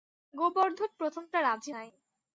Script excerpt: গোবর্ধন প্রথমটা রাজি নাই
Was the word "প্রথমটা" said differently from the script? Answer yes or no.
no